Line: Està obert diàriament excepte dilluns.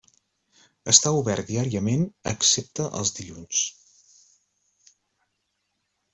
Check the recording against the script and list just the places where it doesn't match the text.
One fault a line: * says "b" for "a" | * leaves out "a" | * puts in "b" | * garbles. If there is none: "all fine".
* puts in "els"